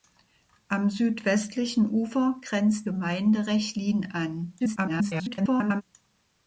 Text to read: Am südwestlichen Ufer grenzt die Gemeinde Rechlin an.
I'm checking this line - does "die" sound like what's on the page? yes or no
no